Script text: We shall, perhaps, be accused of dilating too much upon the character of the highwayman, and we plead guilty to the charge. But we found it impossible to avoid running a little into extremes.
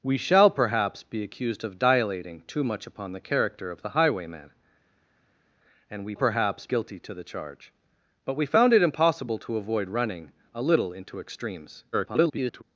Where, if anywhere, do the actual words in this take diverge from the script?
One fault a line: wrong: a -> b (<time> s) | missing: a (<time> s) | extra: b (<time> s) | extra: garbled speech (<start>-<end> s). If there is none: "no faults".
wrong: plead -> perhaps (6.1 s)
extra: garbled speech (11.9-12.6 s)